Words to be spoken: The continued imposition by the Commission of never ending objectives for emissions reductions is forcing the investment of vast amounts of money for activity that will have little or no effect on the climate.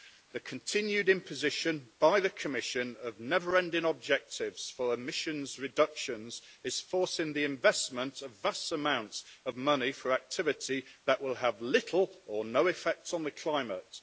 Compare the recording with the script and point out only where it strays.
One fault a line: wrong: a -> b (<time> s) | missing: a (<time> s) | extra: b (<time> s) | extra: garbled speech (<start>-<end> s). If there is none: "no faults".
no faults